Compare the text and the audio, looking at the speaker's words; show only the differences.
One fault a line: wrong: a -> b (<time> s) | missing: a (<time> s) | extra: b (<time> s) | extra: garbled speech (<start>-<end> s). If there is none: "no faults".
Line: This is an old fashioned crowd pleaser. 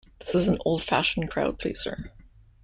no faults